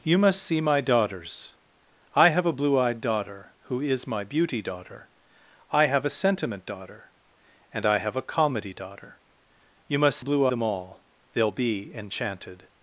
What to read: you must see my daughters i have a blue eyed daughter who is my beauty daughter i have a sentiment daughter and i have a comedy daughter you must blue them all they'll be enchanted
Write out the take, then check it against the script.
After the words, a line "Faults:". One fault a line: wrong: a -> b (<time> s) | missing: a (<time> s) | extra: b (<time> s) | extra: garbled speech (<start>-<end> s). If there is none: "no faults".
you must see my daughters i have a blue eyed daughter who is my beauty daughter i have a sentiment daughter and i have a comedy daughter you must blue them all they'll be enchanted
Faults:
no faults